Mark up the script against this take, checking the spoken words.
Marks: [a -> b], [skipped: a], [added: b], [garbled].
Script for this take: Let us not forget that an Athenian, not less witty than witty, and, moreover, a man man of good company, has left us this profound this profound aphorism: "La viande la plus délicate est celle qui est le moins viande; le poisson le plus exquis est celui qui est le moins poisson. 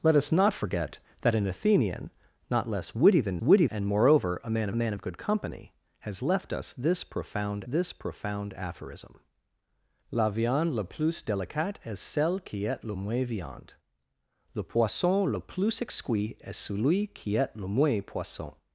Let us not forget that an Athenian, not less witty than witty, and, moreover, a man man of good company, has left us this profound this profound aphorism: "La viande la plus délicate est celle qui est le moins viande; le poisson le plus exquis est celui qui est le moins poisson.